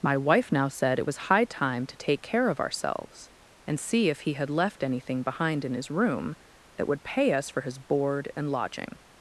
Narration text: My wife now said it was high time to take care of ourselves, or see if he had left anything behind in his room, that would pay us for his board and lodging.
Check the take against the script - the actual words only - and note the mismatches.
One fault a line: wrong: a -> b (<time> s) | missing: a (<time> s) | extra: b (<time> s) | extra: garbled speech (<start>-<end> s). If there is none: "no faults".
wrong: or -> and (3.7 s)